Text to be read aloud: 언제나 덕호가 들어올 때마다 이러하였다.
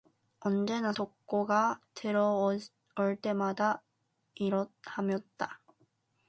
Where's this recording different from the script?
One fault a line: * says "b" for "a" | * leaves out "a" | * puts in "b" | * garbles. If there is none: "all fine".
all fine